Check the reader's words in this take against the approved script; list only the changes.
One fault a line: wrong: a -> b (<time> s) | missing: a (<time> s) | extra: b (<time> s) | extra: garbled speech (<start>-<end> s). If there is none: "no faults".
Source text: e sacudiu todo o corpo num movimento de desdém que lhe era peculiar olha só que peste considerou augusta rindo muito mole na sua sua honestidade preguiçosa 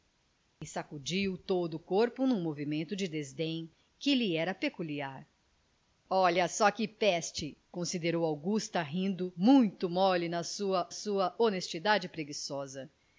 no faults